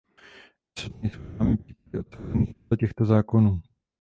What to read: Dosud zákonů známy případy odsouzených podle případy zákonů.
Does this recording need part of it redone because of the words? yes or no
yes